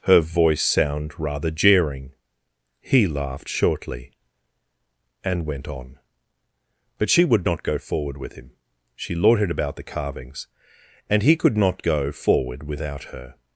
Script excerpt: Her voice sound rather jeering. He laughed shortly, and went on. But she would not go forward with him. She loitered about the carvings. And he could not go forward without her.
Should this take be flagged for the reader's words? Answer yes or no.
no